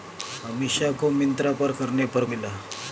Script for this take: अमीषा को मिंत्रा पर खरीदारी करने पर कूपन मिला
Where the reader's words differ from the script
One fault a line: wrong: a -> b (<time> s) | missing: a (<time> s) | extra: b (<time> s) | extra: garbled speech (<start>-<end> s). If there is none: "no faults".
missing: खरीदारी (1.7 s)
missing: कूपन (2.2 s)